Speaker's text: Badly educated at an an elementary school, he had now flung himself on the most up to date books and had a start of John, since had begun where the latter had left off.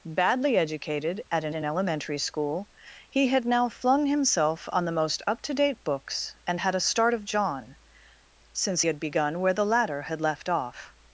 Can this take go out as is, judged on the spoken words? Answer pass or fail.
pass